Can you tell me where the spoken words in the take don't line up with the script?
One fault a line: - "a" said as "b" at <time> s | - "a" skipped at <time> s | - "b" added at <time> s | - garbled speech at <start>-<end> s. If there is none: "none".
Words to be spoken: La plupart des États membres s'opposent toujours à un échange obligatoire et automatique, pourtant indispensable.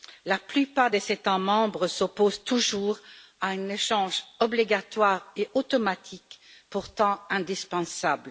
none